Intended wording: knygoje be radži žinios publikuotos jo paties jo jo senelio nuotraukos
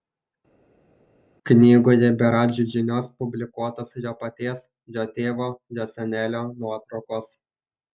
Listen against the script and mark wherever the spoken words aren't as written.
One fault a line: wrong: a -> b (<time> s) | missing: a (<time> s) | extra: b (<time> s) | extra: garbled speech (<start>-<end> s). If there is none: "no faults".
extra: tėvo (5.2 s)